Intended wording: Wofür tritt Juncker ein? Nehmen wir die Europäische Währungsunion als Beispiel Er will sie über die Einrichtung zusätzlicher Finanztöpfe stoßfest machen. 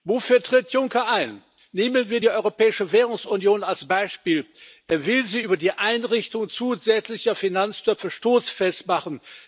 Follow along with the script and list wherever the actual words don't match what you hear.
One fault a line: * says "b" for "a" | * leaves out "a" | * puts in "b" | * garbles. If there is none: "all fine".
all fine